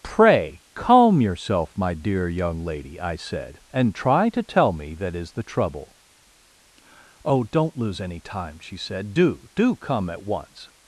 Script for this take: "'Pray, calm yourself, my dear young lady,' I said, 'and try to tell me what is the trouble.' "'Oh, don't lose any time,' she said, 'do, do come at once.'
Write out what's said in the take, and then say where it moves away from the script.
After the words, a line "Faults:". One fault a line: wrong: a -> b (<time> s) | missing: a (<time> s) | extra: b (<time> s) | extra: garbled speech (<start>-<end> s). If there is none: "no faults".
"'Pray, calm yourself, my dear young lady,' I said, 'and try to tell me that is the trouble.' "'Oh, don't lose any time,' she said, 'do, do come at once.'
Faults:
wrong: what -> that (5.0 s)